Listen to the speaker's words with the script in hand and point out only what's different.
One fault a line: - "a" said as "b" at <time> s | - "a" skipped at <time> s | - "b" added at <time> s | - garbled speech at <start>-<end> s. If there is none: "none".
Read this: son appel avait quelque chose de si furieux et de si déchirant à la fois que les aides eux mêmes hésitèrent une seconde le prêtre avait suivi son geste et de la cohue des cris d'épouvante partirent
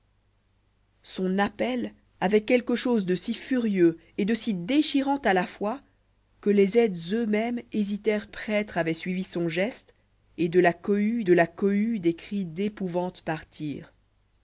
- "une seconde le" skipped at 8.2 s
- "de la cohue" added at 11.2 s